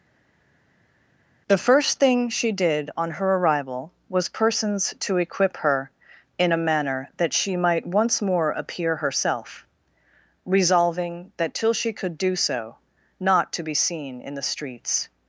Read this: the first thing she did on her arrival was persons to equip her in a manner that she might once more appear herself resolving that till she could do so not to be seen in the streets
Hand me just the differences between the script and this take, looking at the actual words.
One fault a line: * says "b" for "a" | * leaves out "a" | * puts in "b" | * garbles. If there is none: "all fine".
all fine